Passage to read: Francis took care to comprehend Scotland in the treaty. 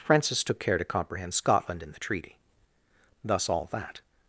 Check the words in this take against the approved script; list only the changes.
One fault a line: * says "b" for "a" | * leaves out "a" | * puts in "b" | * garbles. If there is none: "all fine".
* puts in "Thus all that"